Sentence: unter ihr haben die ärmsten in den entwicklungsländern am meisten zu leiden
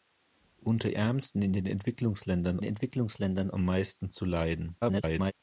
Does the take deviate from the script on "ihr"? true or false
true